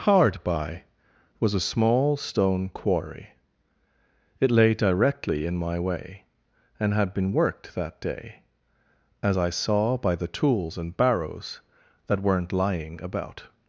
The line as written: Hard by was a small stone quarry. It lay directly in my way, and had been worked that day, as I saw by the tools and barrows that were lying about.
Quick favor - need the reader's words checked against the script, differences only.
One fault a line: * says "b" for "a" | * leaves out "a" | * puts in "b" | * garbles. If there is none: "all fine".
* says "weren't" for "were"